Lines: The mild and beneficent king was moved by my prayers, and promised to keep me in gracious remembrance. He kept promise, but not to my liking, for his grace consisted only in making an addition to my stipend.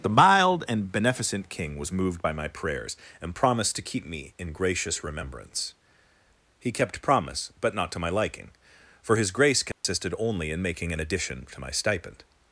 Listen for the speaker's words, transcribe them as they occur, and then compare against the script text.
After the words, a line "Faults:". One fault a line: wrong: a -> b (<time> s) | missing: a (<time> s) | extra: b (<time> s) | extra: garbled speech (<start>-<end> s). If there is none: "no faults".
The mild and beneficent king was moved by my prayers, and promised to keep me in gracious remembrance. He kept promise, but not to my liking, for his grace consisted only in making an addition to my stipend.
Faults:
no faults